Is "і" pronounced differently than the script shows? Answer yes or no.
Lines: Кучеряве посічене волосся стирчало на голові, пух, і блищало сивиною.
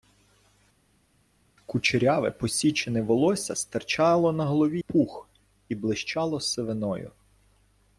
no